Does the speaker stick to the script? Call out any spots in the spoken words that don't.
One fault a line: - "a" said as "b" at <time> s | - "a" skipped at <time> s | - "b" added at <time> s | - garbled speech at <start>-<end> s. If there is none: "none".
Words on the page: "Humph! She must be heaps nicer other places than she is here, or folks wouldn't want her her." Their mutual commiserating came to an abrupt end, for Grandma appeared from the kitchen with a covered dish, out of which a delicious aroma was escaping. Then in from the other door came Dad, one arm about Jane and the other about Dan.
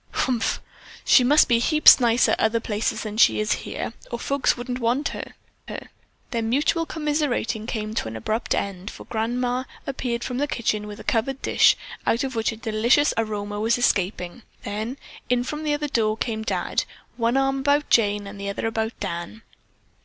none